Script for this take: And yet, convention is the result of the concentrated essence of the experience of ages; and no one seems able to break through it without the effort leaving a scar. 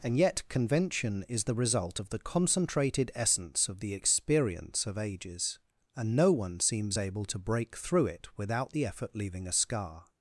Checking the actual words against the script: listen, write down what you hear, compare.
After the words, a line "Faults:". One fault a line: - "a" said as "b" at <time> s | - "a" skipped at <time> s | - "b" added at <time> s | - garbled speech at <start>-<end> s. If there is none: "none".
And yet, convention is the result of the concentrated essence of the experience of ages; and no one seems able to break through it without the effort leaving a scar.
Faults:
none